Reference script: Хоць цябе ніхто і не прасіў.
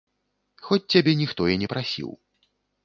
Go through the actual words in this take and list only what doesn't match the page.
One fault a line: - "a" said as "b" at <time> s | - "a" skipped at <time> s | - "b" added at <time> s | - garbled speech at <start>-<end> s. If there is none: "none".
none